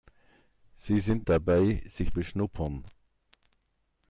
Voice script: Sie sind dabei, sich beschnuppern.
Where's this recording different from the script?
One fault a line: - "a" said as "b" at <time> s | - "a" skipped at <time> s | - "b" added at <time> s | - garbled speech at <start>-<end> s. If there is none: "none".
none